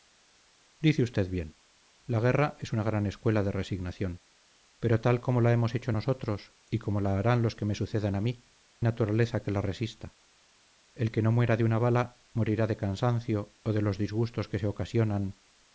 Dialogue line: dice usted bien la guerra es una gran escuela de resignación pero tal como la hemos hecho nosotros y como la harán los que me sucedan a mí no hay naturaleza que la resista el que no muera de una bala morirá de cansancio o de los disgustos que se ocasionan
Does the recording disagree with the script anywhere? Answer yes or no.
yes